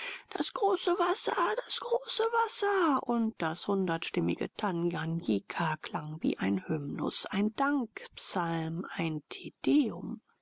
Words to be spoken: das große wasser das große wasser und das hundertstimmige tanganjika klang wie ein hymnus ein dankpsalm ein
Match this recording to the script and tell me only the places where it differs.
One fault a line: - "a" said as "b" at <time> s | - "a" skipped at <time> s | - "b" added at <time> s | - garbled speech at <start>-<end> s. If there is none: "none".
none